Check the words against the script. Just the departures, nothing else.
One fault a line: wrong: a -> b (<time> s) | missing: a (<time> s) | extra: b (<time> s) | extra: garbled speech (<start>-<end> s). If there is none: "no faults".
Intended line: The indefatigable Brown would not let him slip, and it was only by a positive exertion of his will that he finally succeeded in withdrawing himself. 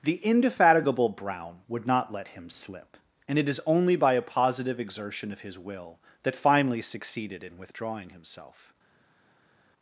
wrong: was -> is (3.5 s)
missing: he (6.4 s)